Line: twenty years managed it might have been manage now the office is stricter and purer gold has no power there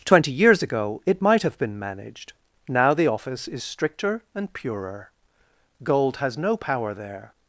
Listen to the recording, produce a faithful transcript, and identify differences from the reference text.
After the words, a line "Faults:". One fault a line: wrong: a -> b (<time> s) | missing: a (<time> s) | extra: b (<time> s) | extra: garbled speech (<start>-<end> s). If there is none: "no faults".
twenty years ago it might have been managed now the office is stricter and purer gold has no power there
Faults:
wrong: managed -> ago (0.6 s)
wrong: manage -> managed (1.8 s)